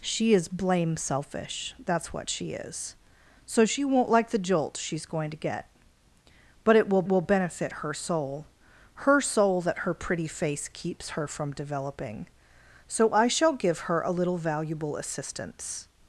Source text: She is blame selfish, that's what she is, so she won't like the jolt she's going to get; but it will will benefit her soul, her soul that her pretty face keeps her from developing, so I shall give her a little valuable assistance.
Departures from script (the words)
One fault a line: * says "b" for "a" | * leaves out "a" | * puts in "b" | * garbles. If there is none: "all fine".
all fine